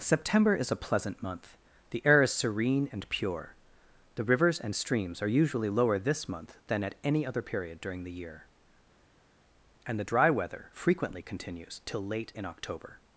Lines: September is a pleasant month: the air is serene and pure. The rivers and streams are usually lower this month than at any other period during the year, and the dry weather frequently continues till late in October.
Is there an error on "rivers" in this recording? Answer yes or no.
no